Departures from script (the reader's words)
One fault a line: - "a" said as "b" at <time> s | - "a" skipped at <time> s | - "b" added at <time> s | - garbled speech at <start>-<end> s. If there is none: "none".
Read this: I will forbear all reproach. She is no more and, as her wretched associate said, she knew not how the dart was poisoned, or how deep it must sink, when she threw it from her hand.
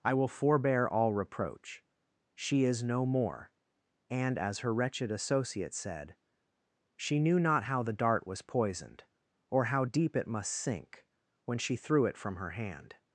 none